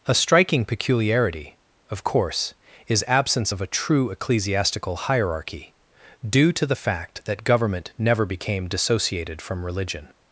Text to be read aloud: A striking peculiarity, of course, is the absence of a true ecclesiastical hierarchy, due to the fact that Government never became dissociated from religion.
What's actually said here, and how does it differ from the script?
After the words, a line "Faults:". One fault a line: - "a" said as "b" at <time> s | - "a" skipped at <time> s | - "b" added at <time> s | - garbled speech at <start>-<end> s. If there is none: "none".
A striking peculiarity, of course, is absence of a true ecclesiastical hierarchy, due to the fact that Government never became dissociated from religion.
Faults:
- "the" skipped at 3.0 s